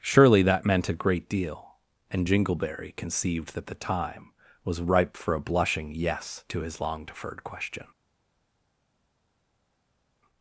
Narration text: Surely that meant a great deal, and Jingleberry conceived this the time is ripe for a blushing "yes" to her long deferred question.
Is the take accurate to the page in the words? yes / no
no